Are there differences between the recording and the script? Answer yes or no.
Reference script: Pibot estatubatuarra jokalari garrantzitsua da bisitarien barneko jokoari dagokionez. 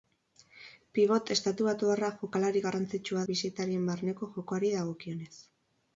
yes